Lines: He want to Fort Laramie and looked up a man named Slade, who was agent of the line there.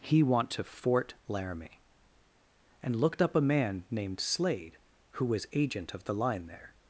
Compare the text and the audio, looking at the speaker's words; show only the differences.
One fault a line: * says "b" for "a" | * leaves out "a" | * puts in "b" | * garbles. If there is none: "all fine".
all fine